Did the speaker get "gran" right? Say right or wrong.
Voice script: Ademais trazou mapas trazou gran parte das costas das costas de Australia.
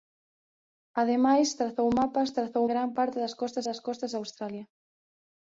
right